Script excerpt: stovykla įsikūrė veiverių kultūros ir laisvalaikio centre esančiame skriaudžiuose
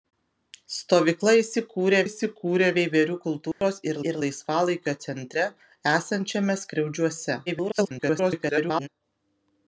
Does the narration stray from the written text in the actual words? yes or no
yes